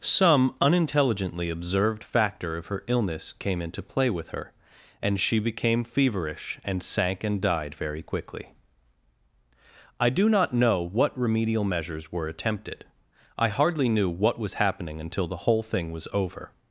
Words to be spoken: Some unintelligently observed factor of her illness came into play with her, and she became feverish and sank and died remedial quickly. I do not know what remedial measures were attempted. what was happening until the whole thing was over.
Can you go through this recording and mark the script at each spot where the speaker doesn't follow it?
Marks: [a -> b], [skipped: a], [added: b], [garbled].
Some unintelligently observed factor of her illness came into play with her, and she became feverish and sank and died [remedial -> very] quickly. I do not know what remedial measures were attempted. [added: I hardly knew] what was happening until the whole thing was over.